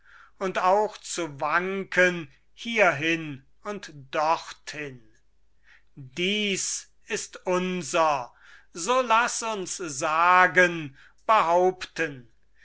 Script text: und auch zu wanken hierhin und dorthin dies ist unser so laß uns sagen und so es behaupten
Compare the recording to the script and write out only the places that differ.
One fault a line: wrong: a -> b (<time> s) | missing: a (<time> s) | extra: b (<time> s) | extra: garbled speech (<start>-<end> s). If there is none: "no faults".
missing: und so es (11.0 s)